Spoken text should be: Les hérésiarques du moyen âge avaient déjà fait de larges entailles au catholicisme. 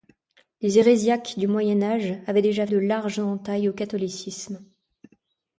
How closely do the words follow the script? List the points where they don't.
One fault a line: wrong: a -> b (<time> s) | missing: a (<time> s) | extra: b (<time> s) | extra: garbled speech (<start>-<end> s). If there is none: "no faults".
missing: fait (2.7 s)